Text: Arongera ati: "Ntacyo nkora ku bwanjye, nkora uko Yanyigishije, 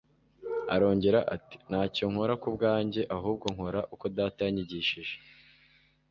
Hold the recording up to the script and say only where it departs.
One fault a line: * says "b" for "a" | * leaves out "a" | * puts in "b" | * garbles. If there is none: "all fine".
* puts in "ahubwo"
* puts in "Data"